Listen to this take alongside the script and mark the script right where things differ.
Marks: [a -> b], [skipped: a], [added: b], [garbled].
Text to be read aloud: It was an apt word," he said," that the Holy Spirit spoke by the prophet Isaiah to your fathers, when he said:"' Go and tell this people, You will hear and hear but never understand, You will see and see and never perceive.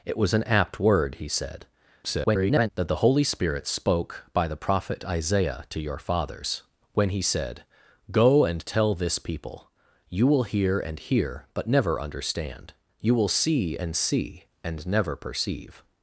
It was an apt word," he said," [garbled] that the Holy Spirit spoke by the prophet Isaiah to your fathers, when he said:"' Go and tell this people, You will hear and hear but never understand, You will see and see and never perceive.